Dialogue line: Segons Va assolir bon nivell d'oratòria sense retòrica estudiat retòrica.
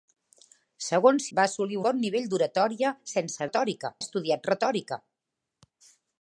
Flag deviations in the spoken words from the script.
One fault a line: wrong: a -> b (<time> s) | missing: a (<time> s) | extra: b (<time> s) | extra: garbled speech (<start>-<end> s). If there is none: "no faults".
no faults